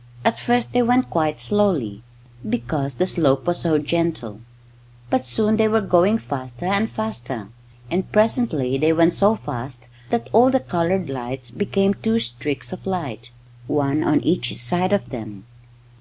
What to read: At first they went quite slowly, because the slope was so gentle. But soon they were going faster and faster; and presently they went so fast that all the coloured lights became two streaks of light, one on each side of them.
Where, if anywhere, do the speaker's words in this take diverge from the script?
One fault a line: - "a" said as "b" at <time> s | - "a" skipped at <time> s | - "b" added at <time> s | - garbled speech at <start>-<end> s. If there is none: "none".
none